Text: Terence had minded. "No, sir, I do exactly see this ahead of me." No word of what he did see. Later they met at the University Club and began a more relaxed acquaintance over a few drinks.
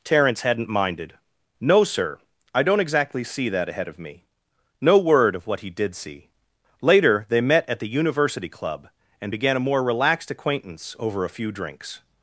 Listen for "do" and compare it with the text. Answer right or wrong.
wrong